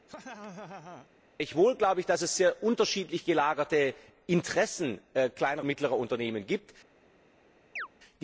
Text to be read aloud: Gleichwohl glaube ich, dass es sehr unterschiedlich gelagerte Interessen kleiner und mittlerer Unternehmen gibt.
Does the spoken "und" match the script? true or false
false